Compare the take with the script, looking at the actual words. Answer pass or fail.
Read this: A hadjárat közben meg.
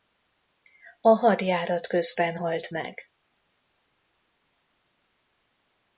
fail